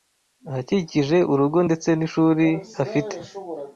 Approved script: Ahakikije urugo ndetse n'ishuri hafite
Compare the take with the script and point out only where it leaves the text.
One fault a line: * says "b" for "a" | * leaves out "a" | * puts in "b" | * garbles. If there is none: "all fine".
all fine